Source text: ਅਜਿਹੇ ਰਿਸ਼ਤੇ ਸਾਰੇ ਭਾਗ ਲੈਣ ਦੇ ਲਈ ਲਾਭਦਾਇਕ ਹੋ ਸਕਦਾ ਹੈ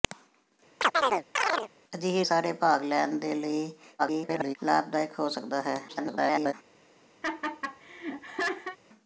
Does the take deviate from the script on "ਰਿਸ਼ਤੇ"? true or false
true